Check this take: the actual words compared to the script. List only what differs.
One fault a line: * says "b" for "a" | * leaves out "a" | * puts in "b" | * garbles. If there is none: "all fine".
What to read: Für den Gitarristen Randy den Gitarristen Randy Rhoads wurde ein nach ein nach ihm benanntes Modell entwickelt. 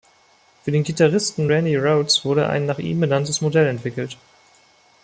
* leaves out "den Gitarristen Randy"
* leaves out "ein nach"